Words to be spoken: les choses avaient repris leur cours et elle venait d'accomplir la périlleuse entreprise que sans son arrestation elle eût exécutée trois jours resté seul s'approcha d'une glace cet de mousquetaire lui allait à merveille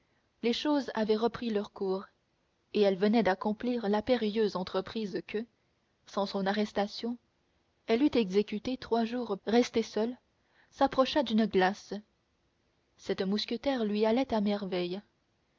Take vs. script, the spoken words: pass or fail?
pass